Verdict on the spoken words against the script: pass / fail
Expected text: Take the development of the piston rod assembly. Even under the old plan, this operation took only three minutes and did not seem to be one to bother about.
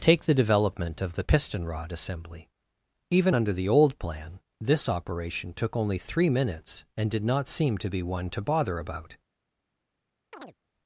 pass